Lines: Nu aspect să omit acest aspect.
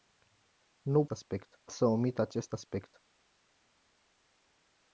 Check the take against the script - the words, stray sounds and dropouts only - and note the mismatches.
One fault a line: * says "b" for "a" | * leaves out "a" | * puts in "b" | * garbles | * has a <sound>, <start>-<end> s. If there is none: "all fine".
all fine